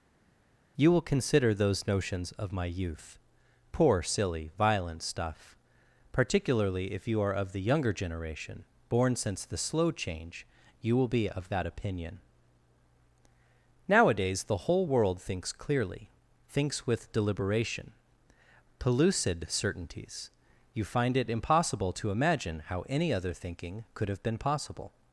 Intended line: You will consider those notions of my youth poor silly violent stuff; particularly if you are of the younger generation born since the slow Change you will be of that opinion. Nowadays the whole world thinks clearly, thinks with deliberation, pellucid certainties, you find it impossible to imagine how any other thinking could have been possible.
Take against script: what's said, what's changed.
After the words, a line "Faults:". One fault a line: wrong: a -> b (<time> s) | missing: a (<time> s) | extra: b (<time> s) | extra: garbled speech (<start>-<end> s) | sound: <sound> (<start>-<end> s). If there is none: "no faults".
You will consider those notions of my youth poor silly violent stuff; particularly if you are of the younger generation born since the slow Change you will be of that opinion. Nowadays the whole world thinks clearly, thinks with deliberation, pellucid certainties, you find it impossible to imagine how any other thinking could have been possible.
Faults:
no faults